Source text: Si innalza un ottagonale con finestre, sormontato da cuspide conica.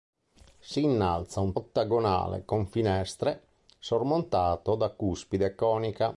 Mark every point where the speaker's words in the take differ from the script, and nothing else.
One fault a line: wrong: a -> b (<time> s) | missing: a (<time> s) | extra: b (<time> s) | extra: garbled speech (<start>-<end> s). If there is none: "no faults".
no faults